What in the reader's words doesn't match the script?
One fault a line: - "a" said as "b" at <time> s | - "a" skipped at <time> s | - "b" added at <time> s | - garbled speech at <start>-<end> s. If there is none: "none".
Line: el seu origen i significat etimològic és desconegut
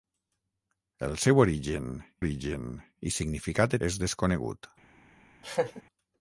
- "origen" added at 2.2 s
- "etimològic" skipped at 3.8 s